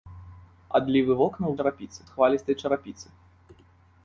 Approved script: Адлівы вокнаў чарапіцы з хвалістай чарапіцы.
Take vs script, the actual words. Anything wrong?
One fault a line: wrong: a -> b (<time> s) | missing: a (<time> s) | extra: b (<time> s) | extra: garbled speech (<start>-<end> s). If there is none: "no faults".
no faults